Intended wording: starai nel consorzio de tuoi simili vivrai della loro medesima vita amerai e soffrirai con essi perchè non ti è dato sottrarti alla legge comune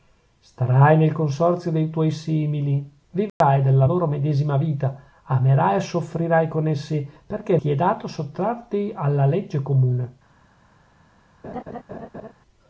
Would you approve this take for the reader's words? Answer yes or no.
no